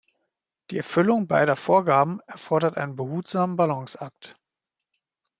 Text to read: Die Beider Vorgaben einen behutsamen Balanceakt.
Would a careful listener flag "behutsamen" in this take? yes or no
no